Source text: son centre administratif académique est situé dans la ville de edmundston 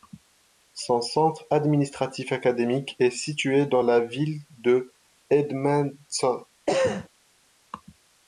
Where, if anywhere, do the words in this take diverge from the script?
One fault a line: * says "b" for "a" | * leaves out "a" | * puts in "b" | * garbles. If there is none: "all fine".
all fine